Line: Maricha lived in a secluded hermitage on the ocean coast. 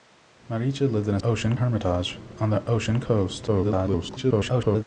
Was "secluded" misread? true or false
true